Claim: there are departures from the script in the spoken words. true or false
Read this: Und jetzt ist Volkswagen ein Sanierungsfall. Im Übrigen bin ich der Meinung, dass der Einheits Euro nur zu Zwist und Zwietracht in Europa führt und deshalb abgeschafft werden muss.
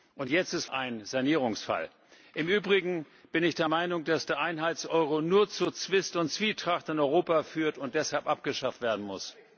true